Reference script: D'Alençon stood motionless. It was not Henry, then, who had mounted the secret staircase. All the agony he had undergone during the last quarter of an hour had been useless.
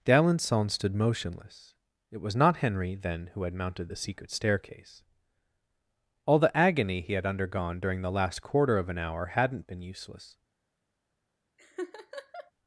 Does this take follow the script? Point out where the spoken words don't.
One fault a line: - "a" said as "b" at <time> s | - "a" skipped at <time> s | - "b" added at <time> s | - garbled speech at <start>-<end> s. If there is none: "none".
- "had" said as "hadn't" at 9.3 s